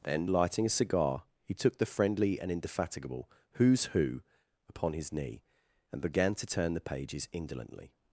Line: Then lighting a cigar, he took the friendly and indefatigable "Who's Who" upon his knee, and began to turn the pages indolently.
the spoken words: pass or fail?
pass